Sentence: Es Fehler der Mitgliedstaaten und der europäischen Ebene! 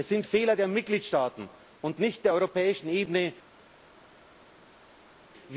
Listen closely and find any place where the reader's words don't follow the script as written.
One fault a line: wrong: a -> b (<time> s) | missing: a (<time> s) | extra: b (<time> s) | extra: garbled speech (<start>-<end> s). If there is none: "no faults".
extra: sind (0.1 s)
extra: nicht (2.0 s)